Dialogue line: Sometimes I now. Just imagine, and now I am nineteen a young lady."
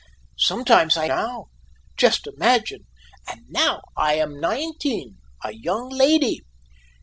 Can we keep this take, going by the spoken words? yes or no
yes